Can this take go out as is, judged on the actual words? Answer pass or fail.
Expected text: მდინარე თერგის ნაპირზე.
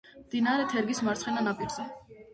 fail